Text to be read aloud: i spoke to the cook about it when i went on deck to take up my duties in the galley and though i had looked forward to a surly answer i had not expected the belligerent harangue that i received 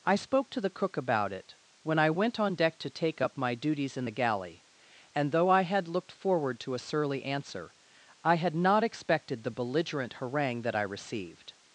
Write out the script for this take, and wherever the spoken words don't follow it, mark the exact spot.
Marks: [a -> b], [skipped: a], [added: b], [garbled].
i spoke to the cook about it when i went on deck to take up my duties in the galley and though i had looked forward to a surly answer i had not expected the belligerent harangue that i received